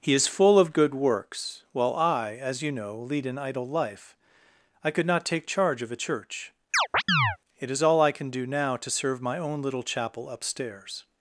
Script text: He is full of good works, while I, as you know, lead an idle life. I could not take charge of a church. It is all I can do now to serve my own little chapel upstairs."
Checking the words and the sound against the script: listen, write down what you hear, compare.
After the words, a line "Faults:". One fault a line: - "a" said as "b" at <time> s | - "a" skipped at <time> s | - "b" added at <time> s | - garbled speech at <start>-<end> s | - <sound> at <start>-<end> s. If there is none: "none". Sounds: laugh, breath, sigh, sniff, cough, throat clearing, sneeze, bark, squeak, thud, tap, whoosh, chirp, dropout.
He is full of good works, while I, as you know, lead an idle life. I could not take charge of a church. It is all I can do now to serve my own little chapel upstairs."
Faults:
- chirp at 6.7-7.4 s